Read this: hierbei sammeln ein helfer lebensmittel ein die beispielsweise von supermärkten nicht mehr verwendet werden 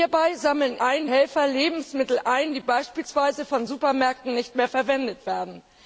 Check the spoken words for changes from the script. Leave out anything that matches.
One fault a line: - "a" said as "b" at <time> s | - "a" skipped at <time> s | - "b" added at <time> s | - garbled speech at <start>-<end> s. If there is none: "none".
none